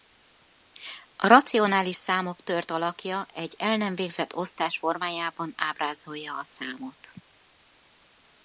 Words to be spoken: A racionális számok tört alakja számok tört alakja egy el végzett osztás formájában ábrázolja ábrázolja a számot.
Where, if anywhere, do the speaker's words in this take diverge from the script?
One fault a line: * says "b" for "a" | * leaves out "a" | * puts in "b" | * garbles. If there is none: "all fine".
* leaves out "számok tört alakja"
* puts in "nem"
* leaves out "ábrázolja"